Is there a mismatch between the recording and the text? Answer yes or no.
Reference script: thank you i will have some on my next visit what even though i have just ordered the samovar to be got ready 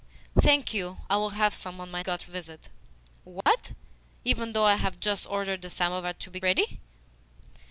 yes